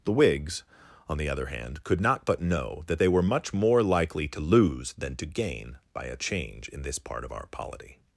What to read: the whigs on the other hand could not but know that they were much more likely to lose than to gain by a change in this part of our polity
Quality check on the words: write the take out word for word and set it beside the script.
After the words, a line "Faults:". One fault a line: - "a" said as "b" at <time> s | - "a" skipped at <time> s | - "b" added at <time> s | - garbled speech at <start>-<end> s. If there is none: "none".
the whigs on the other hand could not but know that they were much more likely to lose than to gain by a change in this part of our polity
Faults:
none